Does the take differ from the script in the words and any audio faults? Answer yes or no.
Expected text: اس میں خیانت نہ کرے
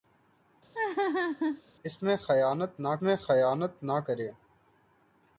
yes